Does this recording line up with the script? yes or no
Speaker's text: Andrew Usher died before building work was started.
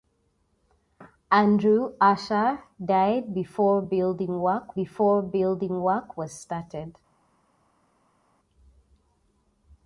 no